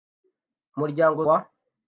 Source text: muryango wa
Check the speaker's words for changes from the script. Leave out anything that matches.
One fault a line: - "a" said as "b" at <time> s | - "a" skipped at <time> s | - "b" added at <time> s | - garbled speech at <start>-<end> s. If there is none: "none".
none